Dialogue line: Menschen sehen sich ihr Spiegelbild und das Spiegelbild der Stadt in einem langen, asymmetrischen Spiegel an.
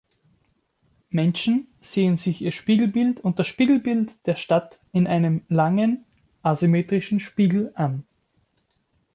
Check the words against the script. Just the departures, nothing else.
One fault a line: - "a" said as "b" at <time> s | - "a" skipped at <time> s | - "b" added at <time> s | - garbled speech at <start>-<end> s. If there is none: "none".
none